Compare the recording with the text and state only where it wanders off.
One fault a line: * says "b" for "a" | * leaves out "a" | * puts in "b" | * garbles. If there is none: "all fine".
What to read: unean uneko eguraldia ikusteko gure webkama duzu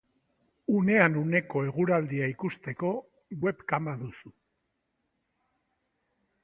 * leaves out "gure"